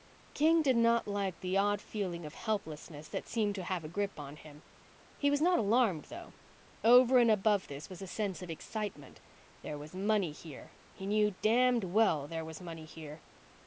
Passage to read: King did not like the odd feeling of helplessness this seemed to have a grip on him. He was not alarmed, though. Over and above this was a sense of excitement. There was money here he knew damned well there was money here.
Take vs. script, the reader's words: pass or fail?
fail